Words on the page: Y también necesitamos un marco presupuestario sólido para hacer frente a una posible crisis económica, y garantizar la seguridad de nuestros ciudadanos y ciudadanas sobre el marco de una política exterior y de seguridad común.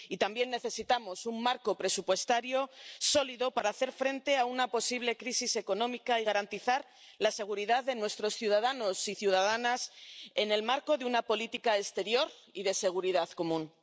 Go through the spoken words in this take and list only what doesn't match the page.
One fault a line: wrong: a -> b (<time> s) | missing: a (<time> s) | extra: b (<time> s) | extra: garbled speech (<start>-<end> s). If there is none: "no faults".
wrong: sobre -> en (10.3 s)